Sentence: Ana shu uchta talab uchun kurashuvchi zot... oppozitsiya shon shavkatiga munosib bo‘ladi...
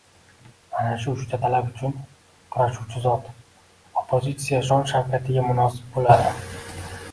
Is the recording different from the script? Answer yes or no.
no